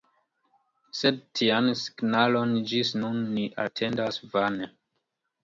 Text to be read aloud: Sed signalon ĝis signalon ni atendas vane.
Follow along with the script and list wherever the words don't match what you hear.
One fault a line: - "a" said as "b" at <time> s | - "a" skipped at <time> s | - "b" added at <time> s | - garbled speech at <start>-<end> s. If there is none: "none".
- "tian" added at 1.4 s
- "signalon" said as "nun" at 3.0 s